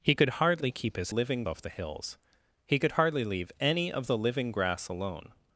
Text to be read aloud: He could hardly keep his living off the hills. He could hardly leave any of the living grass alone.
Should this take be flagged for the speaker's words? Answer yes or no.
no